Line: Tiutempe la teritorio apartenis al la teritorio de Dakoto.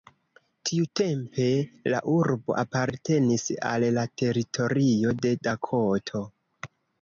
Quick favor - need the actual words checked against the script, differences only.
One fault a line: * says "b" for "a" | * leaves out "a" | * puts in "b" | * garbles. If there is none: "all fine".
* says "urbo" for "teritorio"